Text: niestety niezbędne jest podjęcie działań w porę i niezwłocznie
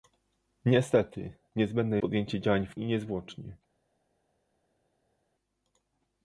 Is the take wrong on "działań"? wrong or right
right